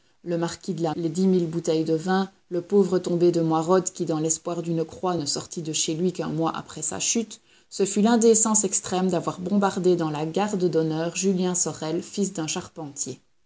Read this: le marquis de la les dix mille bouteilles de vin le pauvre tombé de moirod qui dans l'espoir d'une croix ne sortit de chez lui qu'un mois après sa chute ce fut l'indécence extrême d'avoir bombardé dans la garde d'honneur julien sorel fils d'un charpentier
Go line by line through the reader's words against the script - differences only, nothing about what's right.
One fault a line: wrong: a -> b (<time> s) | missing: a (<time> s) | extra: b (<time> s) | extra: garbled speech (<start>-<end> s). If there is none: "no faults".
no faults